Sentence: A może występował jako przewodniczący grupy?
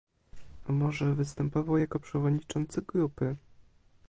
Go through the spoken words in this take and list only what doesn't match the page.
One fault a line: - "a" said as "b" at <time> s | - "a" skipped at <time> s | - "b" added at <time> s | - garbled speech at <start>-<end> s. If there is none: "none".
none